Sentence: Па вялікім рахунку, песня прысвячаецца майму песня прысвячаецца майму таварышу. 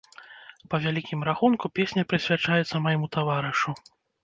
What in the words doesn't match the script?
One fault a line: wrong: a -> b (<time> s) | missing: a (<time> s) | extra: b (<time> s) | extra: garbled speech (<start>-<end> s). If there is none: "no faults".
missing: песня прысвячаецца майму (3.1 s)